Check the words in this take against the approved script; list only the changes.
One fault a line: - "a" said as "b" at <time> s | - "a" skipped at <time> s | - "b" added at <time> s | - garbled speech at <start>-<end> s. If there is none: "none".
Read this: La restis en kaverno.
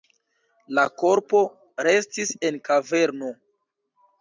- "korpo" added at 1.0 s